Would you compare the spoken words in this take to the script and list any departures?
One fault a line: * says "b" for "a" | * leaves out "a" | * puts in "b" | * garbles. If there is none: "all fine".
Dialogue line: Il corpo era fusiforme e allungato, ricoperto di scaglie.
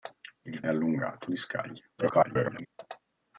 * leaves out "corpo era fusiforme"
* leaves out "ricoperto"
* garbles